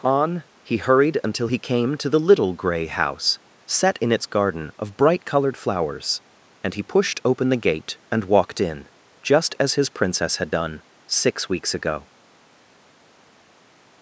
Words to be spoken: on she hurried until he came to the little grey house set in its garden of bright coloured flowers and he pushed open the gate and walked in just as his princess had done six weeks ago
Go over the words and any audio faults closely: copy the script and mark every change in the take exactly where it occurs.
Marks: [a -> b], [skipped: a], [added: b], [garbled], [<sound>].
on [she -> he] hurried until he came to the little grey house set in its garden of bright coloured flowers and he pushed open the gate and walked in just as his princess had done six weeks ago